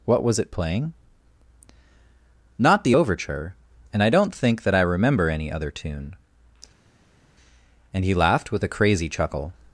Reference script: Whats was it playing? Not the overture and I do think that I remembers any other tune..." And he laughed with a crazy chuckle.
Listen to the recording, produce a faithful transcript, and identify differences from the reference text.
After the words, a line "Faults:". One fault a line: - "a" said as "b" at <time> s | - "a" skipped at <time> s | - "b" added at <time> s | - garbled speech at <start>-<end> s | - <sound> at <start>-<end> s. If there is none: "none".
What was it playing? Not the overture and I don't think that I remember any other tune..." And he laughed with a crazy chuckle.
Faults:
- "Whats" said as "What" at 0.1 s
- "do" said as "don't" at 4.1 s
- "remembers" said as "remember" at 4.8 s